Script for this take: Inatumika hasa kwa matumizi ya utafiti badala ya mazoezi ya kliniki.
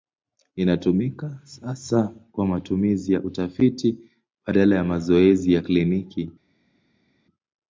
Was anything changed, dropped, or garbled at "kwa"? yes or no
no